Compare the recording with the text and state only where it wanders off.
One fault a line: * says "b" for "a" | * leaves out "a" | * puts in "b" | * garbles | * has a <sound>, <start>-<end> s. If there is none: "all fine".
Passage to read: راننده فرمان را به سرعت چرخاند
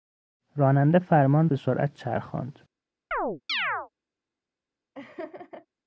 * leaves out "را"
* has a chirp, 3.1-3.9 s
* has a laugh, 4.9-5.7 s